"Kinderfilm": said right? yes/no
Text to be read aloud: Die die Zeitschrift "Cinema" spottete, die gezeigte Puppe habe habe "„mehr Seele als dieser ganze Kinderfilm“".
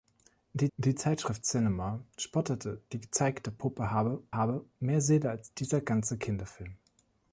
yes